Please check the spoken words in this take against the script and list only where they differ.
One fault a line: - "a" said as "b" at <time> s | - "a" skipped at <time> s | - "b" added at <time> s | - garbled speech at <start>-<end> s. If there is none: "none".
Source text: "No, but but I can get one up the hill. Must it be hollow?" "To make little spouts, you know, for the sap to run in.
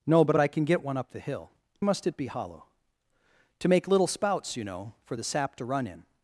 none